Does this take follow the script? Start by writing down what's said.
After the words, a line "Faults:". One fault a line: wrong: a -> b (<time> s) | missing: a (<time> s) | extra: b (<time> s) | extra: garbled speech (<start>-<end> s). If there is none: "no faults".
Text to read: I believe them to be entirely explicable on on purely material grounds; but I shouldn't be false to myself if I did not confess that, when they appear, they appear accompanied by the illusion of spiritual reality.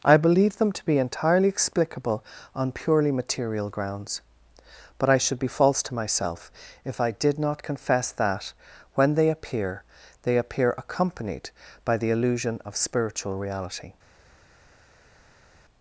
I believe them to be entirely explicable on purely material grounds; but I should be false to myself if I did not confess that, when they appear, they appear accompanied by the illusion of spiritual reality.
Faults:
missing: on (2.7 s)
wrong: shouldn't -> should (5.2 s)